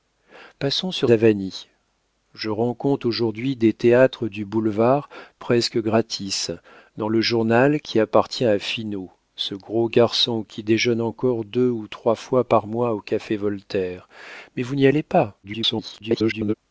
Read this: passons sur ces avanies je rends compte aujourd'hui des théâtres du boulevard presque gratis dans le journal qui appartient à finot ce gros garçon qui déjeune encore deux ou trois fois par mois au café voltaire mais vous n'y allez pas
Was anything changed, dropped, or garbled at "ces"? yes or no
yes